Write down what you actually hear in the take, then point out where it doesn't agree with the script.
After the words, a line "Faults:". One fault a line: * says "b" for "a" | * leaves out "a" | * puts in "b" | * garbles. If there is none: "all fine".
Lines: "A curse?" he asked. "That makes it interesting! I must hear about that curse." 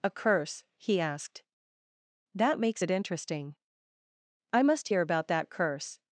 "A curse?" he asked. "That makes it interesting! I must hear about that curse."
Faults:
all fine